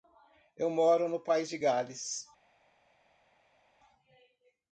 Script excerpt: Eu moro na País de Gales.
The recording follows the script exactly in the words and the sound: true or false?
false